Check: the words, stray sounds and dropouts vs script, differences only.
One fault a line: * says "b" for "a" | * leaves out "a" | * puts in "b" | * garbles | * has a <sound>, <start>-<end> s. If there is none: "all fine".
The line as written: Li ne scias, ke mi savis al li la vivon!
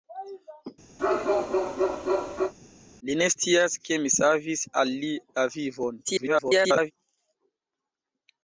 * has a bark, 1.0-2.5 s
* garbles